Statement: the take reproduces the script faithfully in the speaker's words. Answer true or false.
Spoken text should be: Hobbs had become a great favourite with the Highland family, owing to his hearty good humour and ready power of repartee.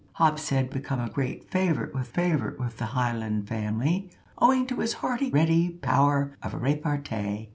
false